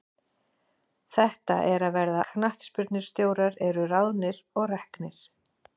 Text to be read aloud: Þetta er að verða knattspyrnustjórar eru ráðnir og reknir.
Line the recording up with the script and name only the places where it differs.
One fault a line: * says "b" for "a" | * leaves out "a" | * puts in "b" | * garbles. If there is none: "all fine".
all fine